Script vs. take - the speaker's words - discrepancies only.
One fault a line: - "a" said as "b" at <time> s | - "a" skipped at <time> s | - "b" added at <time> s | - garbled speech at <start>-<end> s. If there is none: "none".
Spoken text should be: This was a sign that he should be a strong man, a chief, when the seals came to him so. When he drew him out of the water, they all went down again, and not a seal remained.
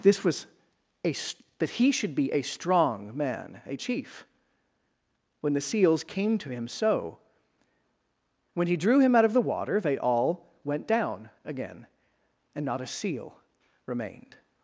- "sign" skipped at 1.1 s